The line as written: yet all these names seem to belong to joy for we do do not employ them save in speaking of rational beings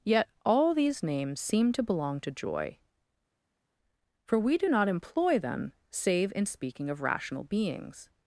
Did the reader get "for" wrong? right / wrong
right